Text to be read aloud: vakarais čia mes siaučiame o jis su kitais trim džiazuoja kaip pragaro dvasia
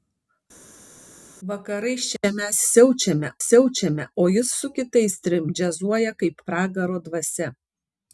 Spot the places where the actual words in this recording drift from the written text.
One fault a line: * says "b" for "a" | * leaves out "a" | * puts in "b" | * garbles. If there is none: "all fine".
* puts in "siaučiame"